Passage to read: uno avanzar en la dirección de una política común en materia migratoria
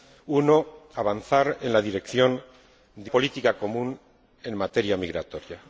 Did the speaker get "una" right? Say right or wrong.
wrong